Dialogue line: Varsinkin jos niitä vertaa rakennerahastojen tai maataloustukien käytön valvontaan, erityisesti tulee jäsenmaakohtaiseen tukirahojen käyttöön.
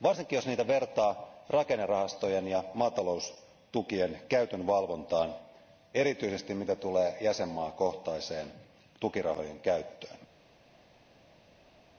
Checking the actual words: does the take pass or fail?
fail